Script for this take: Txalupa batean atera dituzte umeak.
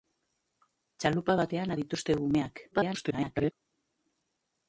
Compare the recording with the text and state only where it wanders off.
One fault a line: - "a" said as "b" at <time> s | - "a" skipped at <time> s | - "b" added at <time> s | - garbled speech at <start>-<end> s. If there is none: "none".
- "atera" skipped at 1.8 s
- garbled speech at 2.7-3.5 s